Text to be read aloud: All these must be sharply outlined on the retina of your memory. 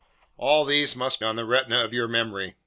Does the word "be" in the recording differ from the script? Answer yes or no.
yes